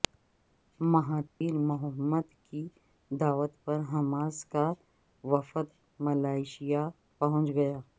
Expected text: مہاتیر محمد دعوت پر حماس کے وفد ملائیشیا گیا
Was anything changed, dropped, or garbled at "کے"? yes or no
yes